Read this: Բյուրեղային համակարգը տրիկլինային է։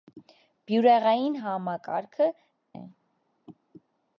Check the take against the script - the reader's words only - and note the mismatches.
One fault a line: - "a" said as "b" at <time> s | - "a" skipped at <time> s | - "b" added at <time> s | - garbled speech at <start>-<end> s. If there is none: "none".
- "տրիկլինային" skipped at 2.3 s